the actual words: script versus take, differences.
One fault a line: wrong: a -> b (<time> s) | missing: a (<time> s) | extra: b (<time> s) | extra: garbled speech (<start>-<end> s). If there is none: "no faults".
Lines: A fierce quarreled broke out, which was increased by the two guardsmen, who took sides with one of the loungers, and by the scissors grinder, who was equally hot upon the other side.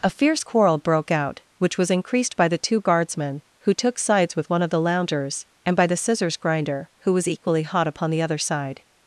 wrong: quarreled -> quarrel (0.4 s)